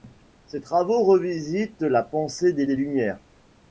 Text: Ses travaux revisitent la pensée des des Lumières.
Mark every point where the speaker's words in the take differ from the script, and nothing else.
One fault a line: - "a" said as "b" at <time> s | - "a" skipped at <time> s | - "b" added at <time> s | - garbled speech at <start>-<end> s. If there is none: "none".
none